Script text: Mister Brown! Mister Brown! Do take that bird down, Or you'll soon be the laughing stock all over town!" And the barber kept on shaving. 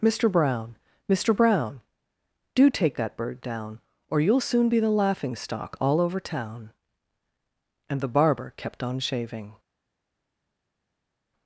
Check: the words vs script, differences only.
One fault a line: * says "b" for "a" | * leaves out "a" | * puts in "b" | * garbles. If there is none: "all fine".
all fine